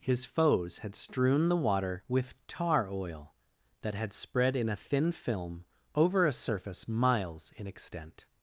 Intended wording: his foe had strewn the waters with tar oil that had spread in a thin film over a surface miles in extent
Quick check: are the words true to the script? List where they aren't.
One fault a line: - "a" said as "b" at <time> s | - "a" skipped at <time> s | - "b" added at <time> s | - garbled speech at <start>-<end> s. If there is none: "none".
- "foe" said as "foes" at 0.2 s
- "waters" said as "water" at 1.6 s